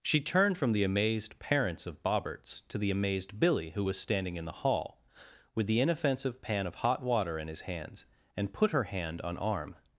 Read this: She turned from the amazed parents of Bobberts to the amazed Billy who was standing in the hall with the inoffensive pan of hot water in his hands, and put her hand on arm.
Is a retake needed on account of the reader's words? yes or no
no